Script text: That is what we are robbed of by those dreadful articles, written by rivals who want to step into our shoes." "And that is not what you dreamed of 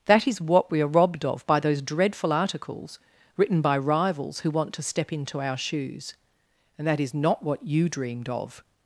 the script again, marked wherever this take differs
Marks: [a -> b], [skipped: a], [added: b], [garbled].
That is what we are robbed of by those dreadful articles, written by rivals who want to step into our shoes." "And that is not what you dreamed of